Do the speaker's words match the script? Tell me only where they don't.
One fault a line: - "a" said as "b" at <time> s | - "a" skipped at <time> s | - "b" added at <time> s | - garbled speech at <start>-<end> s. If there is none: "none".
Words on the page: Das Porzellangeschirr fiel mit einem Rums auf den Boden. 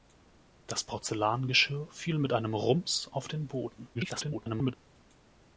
- garbled speech at 3.9-4.7 s